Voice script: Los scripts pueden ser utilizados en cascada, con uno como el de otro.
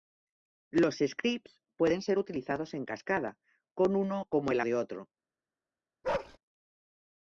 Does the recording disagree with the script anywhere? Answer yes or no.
no